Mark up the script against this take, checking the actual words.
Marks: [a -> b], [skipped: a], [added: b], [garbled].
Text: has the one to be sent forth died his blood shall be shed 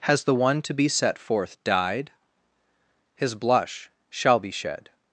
has the one to be [sent -> set] forth died his [blood -> blush] shall be shed